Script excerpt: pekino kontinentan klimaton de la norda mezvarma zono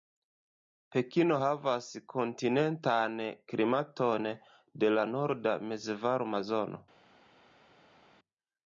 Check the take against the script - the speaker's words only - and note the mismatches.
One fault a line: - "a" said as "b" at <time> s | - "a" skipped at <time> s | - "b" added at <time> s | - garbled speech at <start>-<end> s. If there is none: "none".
- "havas" added at 1.4 s